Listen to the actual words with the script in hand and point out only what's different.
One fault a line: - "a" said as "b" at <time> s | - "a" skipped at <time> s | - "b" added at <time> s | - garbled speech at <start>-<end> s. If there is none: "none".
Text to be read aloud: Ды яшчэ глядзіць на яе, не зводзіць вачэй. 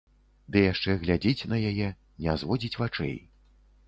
none